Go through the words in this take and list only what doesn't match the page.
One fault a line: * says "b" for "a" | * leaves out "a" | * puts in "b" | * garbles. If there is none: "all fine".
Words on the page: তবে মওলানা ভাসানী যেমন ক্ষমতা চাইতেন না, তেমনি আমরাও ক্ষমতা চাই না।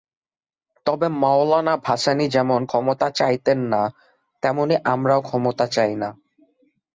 all fine